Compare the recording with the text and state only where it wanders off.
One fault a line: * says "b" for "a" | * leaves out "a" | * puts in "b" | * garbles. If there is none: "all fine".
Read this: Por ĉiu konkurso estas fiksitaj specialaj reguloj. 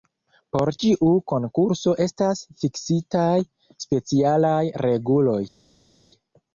all fine